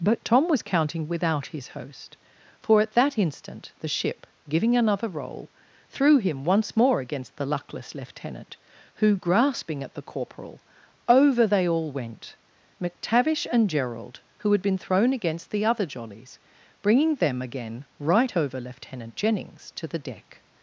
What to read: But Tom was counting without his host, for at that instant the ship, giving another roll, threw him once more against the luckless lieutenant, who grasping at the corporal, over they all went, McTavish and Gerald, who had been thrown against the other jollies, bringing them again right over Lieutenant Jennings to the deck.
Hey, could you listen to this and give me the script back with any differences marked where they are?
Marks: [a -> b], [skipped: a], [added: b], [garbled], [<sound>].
But Tom was counting without his host, for at that instant the ship, giving another roll, threw him once more against the luckless lieutenant, who grasping at the corporal, over they all went, McTavish and Gerald, who had been thrown against the other jollies, bringing them again right over Lieutenant Jennings to the deck.